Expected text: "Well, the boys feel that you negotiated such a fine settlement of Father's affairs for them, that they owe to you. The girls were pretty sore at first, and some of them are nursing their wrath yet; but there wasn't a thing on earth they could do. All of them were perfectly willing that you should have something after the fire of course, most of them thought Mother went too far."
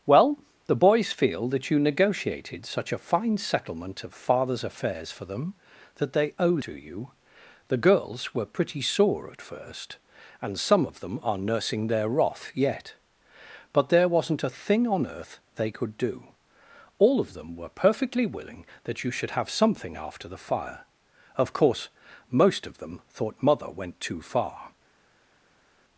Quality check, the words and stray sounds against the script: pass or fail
pass